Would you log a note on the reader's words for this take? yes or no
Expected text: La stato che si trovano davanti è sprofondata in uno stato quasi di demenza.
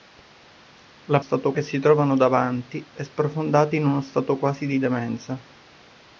no